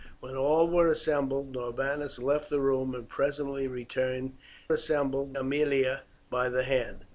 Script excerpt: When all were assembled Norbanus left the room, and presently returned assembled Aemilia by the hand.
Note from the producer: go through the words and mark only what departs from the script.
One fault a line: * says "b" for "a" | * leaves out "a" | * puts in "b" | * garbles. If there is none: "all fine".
all fine